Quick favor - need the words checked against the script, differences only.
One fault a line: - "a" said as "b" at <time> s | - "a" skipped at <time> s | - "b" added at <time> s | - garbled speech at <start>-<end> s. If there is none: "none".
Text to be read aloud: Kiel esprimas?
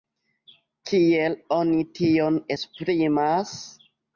- "oni tion" added at 1.6 s